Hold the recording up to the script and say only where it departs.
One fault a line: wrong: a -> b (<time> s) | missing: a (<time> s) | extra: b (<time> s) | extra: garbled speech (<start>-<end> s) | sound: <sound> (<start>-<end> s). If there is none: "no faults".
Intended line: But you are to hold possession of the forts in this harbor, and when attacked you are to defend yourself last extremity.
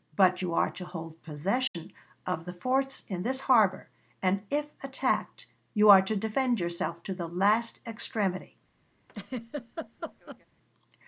sound: dropout (1.7-1.7 s)
wrong: when -> if (4.5 s)
extra: to the (7.0 s)
sound: laugh (9.1-10.5 s)